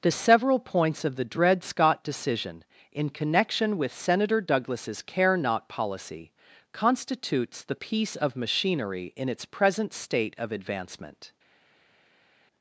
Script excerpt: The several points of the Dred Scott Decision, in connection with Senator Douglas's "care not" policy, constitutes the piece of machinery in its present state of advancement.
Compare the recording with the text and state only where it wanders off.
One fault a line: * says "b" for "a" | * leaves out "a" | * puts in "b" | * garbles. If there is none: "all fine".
all fine